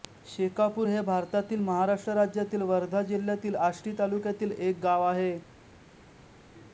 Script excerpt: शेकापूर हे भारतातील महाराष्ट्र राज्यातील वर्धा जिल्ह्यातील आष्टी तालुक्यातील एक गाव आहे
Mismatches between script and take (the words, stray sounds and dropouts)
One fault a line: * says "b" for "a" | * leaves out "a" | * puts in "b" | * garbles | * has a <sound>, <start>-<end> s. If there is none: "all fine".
all fine